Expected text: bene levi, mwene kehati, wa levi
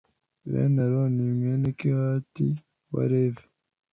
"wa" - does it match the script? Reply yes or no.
yes